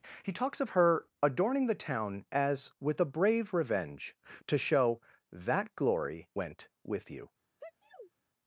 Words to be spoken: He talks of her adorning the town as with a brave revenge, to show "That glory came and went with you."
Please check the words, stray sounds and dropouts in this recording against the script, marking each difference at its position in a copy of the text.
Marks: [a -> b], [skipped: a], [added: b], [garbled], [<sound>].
He talks of her adorning the town as with a brave revenge, to show "That glory [skipped: came and] went with you." [sneeze]